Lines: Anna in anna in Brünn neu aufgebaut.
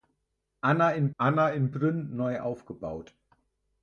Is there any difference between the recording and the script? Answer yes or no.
no